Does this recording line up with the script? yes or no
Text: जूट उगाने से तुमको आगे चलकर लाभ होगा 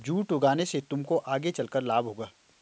yes